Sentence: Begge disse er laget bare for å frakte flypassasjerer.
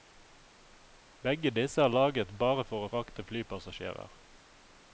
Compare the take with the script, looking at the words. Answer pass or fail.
pass